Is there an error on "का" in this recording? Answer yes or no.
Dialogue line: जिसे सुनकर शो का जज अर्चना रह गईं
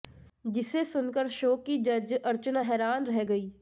yes